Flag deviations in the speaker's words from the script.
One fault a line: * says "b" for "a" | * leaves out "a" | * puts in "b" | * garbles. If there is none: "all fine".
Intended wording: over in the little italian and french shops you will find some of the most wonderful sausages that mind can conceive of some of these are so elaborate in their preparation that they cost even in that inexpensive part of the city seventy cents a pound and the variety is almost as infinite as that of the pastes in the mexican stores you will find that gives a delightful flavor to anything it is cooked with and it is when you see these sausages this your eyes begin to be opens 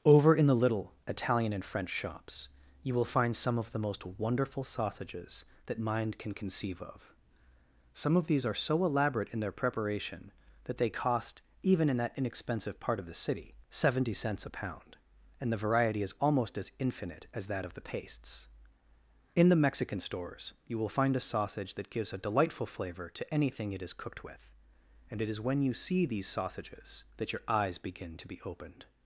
* puts in "a sausage"
* says "that" for "this"
* says "opened" for "opens"